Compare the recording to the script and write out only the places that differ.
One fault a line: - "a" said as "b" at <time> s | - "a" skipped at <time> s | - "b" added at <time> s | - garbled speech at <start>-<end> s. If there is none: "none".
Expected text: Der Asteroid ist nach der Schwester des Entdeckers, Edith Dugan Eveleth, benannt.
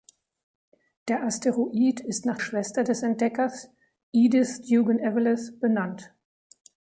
- "der" skipped at 2.4 s